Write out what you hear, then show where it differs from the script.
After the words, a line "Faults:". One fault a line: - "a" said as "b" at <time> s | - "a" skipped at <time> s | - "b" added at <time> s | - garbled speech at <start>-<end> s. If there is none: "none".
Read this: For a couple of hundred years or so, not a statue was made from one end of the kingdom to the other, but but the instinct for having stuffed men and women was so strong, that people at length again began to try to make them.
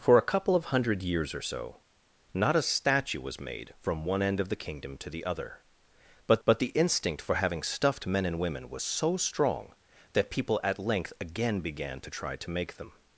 For a couple of hundred years or so, not a statue was made from one end of the kingdom to the other, but but the instinct for having stuffed men and women was so strong, that people at length again began to try to make them.
Faults:
none